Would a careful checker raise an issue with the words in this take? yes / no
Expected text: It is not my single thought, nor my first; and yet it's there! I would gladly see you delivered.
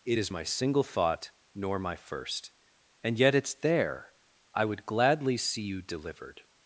yes